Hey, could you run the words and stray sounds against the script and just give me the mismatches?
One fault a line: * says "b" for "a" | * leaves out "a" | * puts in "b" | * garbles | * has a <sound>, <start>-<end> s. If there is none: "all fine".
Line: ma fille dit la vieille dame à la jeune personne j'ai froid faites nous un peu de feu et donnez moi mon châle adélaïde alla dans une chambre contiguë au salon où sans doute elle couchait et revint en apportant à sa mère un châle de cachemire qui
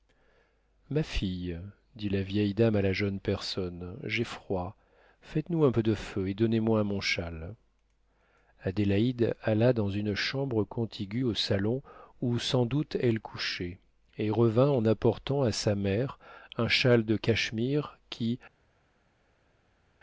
all fine